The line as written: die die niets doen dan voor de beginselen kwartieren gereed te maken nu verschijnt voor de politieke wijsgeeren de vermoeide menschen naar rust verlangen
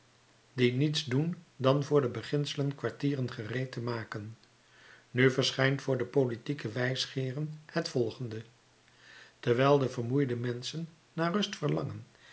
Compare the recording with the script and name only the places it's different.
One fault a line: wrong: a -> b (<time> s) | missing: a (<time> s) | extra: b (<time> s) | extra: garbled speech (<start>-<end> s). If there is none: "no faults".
missing: die (0.7 s)
extra: het volgende terwijl (7.7 s)